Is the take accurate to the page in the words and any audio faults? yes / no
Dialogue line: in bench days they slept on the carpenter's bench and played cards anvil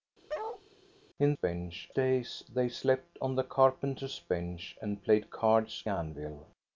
no